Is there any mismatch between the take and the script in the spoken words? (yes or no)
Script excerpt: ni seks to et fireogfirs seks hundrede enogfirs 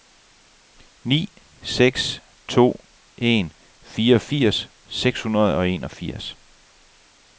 yes